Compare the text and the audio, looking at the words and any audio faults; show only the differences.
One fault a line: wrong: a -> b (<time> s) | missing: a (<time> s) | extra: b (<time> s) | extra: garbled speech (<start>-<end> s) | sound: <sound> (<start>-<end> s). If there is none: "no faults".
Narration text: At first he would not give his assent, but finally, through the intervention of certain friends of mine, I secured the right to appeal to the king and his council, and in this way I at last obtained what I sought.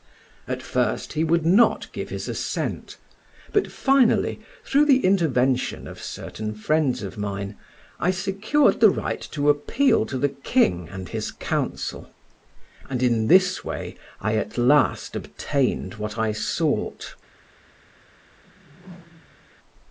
sound: whoosh (18.4-19.5 s)